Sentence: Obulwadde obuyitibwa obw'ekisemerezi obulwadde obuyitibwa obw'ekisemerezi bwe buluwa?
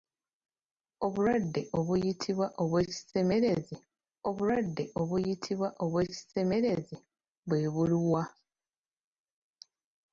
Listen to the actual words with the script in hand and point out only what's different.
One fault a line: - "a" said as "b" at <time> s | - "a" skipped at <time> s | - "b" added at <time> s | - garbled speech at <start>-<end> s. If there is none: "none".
none